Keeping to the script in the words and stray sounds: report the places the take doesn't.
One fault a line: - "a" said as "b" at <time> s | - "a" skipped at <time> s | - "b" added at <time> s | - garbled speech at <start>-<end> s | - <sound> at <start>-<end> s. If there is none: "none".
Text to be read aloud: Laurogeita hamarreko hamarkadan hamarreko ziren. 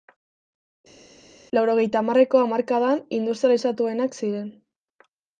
- "hamarreko" said as "industrializatuenak" at 3.2 s